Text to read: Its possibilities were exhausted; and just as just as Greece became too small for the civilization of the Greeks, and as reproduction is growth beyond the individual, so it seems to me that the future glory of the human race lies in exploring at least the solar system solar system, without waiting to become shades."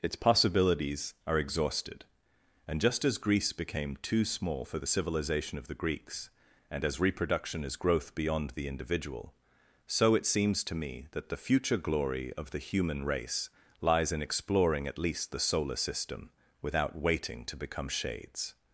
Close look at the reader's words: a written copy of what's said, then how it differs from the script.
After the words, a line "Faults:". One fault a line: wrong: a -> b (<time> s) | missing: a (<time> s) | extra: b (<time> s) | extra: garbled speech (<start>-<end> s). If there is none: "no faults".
Its possibilities are exhausted; and just as Greece became too small for the civilization of the Greeks, and as reproduction is growth beyond the individual, so it seems to me that the future glory of the human race lies in exploring at least the solar system, without waiting to become shades."
Faults:
wrong: were -> are (1.3 s)
missing: just as (3.2 s)
missing: solar system (16.3 s)